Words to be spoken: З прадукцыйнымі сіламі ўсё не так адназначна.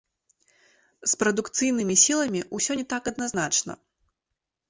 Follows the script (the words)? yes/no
yes